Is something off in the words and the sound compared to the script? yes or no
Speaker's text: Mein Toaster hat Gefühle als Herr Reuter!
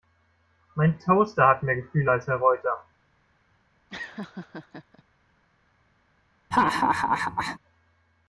yes